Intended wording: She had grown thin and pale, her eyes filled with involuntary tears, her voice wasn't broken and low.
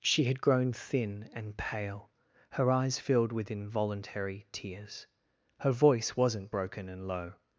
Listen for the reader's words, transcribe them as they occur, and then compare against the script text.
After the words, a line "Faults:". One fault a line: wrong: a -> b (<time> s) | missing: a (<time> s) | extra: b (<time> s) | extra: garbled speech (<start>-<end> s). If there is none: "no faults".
She had grown thin and pale, her eyes filled with involuntary tears, her voice wasn't broken and low.
Faults:
no faults